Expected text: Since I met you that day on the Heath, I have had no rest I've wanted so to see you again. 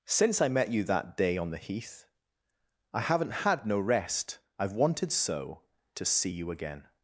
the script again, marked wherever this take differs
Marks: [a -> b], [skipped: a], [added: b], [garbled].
Since I met you that day on the Heath, I [have -> haven't] had no rest I've wanted so to see you again.